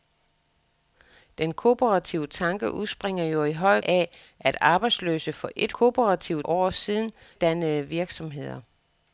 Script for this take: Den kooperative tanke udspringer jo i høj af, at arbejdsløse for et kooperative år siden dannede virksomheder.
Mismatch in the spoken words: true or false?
false